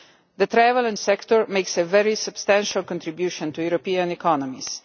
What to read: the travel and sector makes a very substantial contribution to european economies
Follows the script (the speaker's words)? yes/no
yes